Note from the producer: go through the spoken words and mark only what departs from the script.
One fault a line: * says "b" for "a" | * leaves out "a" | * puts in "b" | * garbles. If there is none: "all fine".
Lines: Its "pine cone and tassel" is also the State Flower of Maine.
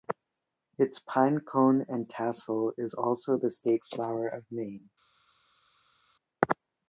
all fine